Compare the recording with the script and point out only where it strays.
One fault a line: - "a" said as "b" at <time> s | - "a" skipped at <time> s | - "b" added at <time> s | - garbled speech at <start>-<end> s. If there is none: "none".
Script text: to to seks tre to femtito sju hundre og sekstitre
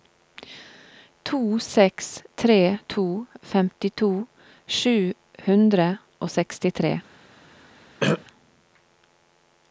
- "to" skipped at 1.6 s